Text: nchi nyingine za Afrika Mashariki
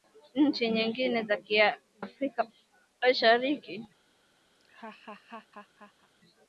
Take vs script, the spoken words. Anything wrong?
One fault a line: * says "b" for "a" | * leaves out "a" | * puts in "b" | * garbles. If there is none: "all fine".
* leaves out "za"